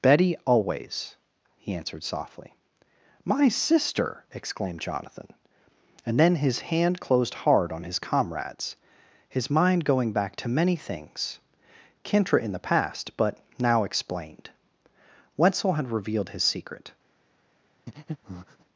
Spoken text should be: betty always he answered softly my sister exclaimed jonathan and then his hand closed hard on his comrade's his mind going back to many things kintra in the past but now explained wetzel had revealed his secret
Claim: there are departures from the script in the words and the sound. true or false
true